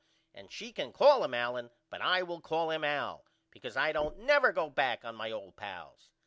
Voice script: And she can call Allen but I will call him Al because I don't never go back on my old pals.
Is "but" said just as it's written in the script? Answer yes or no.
yes